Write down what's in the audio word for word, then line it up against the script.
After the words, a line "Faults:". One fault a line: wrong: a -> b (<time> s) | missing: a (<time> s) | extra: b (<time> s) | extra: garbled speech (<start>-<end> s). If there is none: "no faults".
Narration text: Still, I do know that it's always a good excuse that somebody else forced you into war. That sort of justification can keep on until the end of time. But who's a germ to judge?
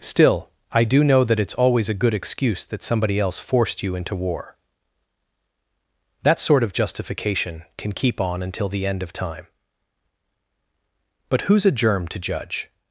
Still, I do know that it's always a good excuse that somebody else forced you into war. That sort of justification can keep on until the end of time. But who's a germ to judge?
Faults:
no faults